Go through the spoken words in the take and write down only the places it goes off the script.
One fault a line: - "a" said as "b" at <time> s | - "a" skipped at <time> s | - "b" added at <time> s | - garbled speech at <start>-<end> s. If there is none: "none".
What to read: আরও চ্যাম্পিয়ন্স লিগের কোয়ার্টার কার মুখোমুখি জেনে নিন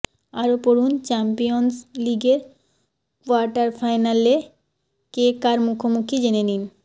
- "পড়ুন" added at 0.6 s
- "ফাইনালে কে" added at 3.8 s